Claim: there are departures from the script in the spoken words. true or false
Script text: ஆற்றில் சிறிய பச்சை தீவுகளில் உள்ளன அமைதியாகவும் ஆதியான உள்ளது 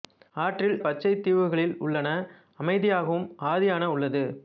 true